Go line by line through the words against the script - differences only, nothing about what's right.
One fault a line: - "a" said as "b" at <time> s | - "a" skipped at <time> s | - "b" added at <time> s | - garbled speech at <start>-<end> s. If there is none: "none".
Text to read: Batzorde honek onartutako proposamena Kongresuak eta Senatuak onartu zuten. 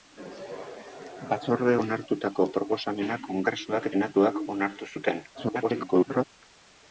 - "honek" skipped at 1.8 s
- "eta" skipped at 3.9 s
- garbled speech at 5.3-6.2 s